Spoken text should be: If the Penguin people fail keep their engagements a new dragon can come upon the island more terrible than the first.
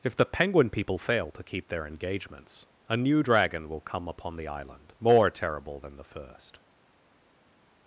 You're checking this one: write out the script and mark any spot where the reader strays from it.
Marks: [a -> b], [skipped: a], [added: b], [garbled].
If the Penguin people fail [added: to] keep their engagements a new dragon [can -> will] come upon the island more terrible than the first.